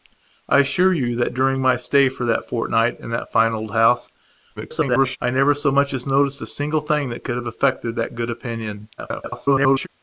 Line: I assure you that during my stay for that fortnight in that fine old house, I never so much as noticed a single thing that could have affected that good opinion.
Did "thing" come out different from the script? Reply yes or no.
no